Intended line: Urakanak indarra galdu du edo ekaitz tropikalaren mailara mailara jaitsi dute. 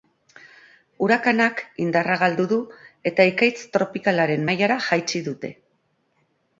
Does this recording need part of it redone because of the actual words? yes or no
yes